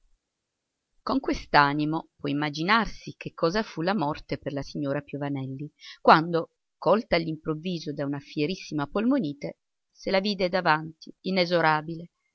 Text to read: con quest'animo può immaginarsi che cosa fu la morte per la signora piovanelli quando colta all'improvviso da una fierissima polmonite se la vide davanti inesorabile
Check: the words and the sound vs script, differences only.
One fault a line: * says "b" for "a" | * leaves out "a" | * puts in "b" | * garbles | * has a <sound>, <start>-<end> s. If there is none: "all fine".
all fine